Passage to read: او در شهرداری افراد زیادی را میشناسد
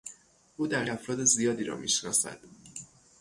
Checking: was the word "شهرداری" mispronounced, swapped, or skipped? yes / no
yes